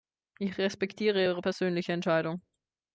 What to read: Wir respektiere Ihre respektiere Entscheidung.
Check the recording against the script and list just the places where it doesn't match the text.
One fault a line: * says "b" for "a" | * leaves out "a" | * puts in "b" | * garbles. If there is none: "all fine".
* says "Ich" for "Wir"
* says "persönliche" for "respektiere"